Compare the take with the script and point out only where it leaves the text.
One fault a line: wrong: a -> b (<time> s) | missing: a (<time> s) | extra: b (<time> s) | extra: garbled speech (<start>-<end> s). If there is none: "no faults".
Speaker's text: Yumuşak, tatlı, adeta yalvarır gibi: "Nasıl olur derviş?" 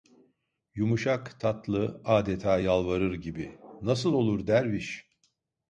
no faults